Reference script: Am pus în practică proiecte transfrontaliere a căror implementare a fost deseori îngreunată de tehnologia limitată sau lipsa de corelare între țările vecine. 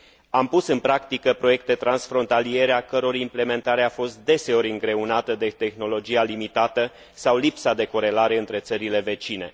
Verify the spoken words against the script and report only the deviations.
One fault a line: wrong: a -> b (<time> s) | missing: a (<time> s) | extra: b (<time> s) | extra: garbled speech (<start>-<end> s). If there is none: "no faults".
no faults